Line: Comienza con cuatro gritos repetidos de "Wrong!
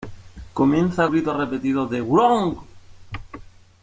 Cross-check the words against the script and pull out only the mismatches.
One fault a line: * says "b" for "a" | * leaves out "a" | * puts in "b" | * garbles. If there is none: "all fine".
* leaves out "con cuatro"